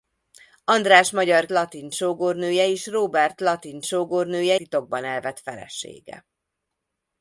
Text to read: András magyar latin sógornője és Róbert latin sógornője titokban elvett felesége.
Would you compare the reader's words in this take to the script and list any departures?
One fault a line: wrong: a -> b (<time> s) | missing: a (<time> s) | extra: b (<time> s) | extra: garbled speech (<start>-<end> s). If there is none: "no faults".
no faults